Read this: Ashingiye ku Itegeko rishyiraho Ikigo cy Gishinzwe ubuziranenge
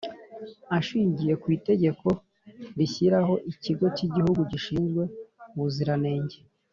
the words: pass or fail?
fail